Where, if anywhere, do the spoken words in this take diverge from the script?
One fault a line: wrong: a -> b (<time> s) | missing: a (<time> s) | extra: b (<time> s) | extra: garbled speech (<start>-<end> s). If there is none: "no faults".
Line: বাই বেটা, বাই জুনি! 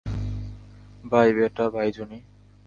no faults